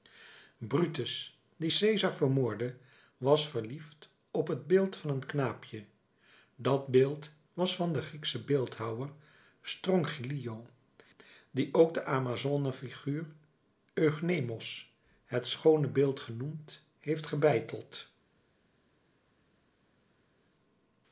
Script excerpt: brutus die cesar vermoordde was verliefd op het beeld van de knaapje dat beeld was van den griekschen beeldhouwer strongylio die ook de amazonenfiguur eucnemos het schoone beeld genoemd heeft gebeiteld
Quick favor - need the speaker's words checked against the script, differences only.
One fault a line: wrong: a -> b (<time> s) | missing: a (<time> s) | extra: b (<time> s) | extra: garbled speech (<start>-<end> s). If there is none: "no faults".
wrong: de -> een (5.1 s)